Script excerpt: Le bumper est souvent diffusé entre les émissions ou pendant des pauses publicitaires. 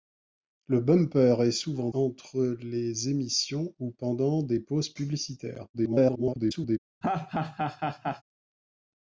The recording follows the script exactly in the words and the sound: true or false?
false